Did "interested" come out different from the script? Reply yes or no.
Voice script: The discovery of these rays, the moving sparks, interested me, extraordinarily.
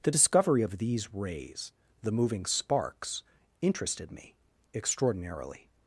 no